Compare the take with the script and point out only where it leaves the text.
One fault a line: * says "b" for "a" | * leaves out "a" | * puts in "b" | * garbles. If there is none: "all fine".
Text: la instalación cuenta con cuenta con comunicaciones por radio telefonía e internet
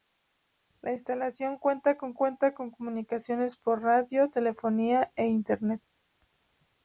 all fine